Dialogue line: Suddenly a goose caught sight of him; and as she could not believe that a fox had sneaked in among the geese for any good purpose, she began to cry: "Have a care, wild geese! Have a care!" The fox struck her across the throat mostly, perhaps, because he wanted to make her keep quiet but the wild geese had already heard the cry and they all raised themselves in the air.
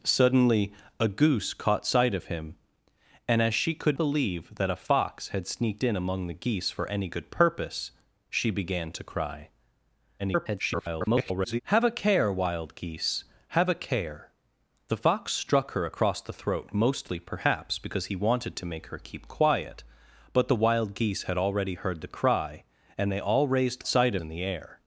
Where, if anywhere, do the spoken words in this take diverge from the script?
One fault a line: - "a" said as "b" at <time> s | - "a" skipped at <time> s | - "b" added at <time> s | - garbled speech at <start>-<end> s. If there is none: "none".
- "not" skipped at 4.0 s
- garbled speech at 10.2-11.6 s
- "themselves" said as "sight" at 23.9 s